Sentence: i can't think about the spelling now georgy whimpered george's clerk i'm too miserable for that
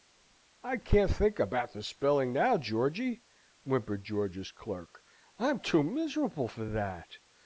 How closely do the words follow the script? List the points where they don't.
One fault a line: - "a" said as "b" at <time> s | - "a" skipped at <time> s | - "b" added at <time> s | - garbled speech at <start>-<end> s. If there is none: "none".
none